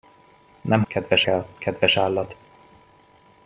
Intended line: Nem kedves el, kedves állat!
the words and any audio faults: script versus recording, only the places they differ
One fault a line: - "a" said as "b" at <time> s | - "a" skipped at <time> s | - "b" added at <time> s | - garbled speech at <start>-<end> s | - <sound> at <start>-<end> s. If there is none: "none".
none